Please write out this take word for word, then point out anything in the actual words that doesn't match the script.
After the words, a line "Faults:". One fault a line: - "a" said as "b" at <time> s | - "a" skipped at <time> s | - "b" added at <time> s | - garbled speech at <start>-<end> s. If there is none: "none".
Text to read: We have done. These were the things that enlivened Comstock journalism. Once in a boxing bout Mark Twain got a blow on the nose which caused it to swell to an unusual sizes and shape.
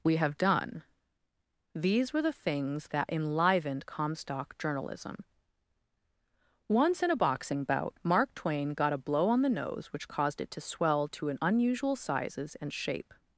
We have done. These were the things that enlivened Comstock journalism. Once in a boxing bout Mark Twain got a blow on the nose which caused it to swell to an unusual sizes and shape.
Faults:
none